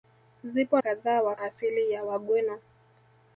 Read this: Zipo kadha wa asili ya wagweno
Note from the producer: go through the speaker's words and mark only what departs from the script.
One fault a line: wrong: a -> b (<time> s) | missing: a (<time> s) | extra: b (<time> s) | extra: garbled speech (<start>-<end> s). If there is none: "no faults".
no faults